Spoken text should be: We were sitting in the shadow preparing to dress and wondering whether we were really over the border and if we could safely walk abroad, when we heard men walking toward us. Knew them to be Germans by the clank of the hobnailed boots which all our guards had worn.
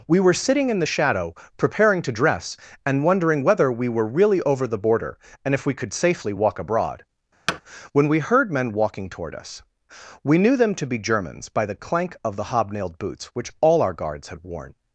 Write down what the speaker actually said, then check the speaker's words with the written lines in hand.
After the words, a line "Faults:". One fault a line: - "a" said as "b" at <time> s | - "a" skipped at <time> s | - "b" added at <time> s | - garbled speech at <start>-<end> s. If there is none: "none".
We were sitting in the shadow preparing to dress and wondering whether we were really over the border and if we could safely walk abroad, when we heard men walking toward us. We knew them to be Germans by the clank of the hobnailed boots which all our guards had worn.
Faults:
- "We" added at 10.2 s